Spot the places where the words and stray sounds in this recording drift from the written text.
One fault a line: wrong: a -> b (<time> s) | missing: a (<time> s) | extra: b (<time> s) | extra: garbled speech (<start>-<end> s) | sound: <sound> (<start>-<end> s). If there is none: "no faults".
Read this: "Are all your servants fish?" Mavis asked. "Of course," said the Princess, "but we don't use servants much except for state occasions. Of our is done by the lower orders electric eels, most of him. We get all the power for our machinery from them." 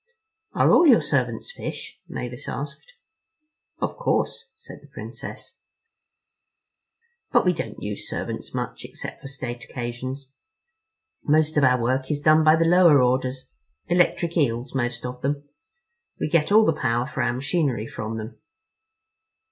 extra: Most (11.2 s)
extra: work (11.8 s)
wrong: him -> them (15.2 s)